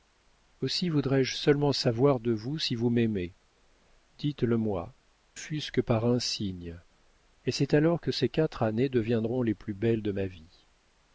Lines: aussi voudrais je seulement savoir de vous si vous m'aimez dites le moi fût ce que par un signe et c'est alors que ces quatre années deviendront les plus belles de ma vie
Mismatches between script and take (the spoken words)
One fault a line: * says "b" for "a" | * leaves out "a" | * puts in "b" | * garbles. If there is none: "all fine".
all fine